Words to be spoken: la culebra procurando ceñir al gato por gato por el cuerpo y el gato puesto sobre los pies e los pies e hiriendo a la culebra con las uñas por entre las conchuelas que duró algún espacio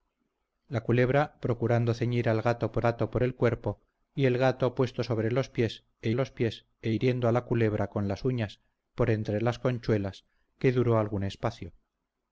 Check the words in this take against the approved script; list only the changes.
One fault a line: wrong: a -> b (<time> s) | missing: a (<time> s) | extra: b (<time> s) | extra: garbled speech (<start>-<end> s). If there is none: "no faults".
no faults